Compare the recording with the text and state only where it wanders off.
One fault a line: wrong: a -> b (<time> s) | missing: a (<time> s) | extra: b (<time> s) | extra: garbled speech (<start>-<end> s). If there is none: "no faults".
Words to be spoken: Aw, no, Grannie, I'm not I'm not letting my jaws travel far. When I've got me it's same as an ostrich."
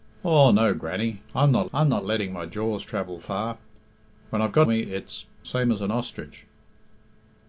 no faults